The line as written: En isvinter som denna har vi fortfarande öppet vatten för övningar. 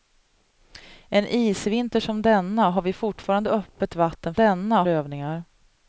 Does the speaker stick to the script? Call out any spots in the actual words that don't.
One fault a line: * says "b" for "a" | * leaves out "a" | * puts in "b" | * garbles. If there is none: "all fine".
* says "denna" for "för"